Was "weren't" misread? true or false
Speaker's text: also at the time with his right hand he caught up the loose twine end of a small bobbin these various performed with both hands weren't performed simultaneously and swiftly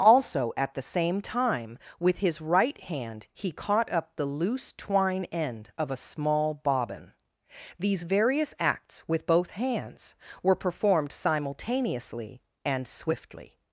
true